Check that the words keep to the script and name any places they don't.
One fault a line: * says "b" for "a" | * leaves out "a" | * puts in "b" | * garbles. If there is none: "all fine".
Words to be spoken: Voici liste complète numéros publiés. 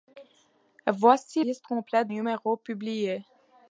all fine